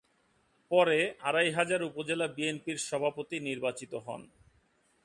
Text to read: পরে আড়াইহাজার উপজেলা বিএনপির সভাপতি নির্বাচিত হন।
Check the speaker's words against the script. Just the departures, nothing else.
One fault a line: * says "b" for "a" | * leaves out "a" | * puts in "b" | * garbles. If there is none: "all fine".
all fine